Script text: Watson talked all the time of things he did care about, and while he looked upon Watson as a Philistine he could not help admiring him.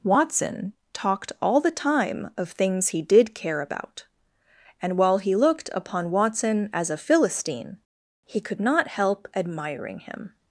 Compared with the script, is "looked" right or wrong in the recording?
right